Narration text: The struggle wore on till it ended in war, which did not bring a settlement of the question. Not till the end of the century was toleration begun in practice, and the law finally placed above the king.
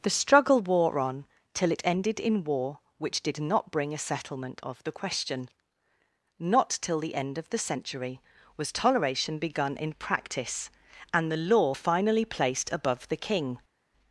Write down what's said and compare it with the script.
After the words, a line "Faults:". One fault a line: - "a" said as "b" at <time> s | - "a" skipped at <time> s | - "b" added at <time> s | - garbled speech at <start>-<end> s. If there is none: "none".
The struggle wore on till it ended in war, which did not bring a settlement of the question. Not till the end of the century was toleration begun in practice, and the law finally placed above the king.
Faults:
none